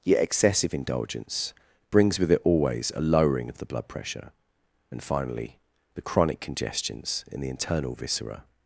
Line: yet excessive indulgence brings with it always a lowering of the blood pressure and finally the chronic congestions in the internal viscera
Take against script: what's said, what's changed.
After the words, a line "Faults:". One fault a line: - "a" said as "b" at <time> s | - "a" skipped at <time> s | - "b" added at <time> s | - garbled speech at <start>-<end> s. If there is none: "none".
yet excessive indulgence brings with it always a lowering of the blood pressure and finally the chronic congestions in the internal viscera
Faults:
none